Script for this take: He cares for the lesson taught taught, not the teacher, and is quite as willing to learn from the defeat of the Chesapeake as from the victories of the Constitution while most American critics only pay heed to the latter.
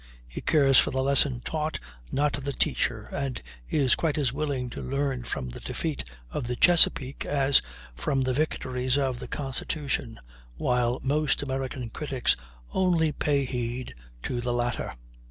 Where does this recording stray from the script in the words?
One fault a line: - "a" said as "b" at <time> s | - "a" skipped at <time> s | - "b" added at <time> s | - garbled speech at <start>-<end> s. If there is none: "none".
- "taught" skipped at 1.8 s